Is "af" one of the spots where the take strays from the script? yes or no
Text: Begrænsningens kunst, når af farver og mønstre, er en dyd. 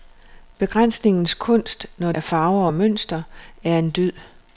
no